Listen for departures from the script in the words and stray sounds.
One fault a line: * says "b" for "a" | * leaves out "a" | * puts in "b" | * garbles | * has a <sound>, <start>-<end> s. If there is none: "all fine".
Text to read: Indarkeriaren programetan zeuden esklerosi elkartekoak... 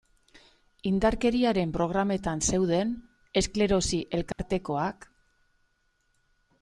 * has a dropout, 4.3-4.4 s